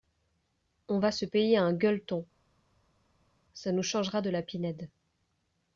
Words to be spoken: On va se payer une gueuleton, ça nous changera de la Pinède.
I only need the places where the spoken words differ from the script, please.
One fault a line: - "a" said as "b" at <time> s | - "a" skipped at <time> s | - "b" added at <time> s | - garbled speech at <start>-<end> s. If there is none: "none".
- "une" said as "un" at 1.6 s